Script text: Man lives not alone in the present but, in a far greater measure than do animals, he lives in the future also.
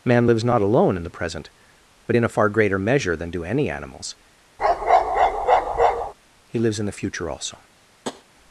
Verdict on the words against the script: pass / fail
fail